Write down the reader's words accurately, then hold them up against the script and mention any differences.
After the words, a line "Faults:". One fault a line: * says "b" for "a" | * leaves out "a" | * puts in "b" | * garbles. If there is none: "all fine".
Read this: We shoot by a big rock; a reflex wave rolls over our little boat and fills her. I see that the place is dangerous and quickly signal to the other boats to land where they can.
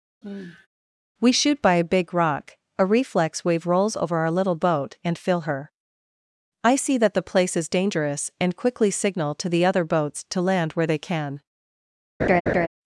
We shoot by a big rock; a reflex wave rolls over our little boat and fill her. I see that the place is dangerous and quickly signal to the other boats to land where they can.
Faults:
* says "fill" for "fills"